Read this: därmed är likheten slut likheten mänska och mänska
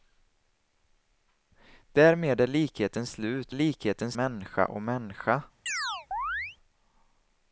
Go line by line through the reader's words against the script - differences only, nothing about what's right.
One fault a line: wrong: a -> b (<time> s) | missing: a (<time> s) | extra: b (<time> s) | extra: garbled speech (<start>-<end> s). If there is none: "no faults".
no faults